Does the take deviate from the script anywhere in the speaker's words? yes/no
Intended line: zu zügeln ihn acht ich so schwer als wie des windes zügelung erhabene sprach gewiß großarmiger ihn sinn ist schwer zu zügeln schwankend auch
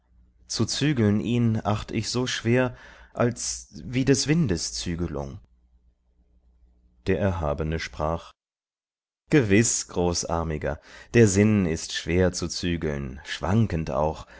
yes